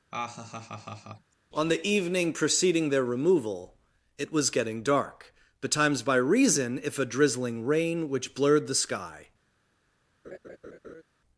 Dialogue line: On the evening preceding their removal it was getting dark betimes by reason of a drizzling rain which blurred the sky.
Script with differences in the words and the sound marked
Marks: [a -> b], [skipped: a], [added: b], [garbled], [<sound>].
[laugh] On the evening preceding their removal it was getting dark betimes by reason [of -> if] a drizzling rain which blurred the sky. [laugh]